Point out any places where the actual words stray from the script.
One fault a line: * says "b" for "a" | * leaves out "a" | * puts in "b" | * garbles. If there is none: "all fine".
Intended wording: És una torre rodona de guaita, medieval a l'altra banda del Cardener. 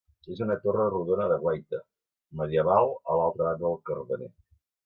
all fine